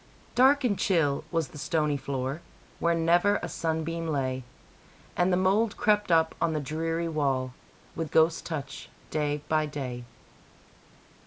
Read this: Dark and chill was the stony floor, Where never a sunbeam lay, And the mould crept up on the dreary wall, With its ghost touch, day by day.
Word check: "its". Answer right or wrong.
wrong